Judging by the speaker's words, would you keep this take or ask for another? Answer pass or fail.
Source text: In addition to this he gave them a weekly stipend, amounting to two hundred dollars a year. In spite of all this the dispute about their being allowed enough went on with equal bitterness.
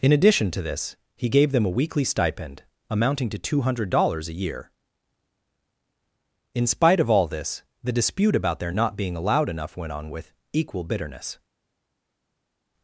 fail